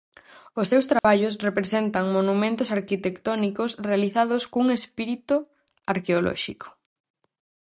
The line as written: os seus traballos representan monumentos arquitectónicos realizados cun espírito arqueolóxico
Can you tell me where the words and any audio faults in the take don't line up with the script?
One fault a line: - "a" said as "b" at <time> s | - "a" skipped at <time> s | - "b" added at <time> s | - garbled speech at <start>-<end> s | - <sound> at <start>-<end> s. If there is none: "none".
- dropout at 1.0-1.0 s